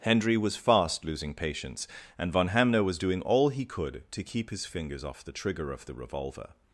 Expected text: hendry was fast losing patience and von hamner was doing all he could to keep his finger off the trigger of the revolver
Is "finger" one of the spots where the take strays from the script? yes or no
yes